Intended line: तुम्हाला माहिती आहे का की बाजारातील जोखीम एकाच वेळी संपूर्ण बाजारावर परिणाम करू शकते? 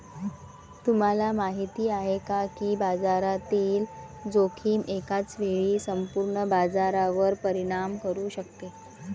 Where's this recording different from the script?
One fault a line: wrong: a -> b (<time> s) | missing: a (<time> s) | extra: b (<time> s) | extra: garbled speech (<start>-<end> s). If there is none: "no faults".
no faults